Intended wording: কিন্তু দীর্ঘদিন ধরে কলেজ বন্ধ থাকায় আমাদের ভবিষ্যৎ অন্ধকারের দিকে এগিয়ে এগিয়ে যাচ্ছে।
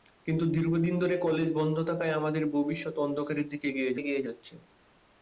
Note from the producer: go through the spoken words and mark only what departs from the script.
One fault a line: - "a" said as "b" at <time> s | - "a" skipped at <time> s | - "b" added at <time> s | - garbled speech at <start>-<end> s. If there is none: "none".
none